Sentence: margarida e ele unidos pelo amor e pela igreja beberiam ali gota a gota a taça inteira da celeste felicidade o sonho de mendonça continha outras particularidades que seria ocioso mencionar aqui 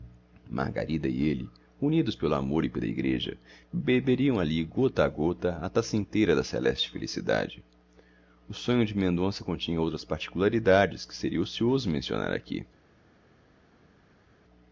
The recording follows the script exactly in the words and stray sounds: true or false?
true